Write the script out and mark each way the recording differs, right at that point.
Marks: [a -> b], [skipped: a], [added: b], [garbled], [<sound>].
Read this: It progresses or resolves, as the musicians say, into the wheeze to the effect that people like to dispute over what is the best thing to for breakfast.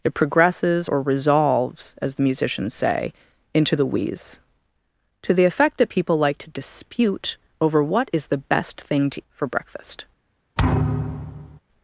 It progresses or resolves, as the musicians say, into the wheeze to the effect that people like to dispute over what is the best thing to for breakfast. [thud]